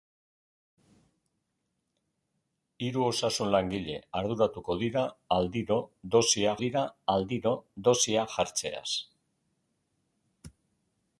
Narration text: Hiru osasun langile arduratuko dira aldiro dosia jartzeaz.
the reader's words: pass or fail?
fail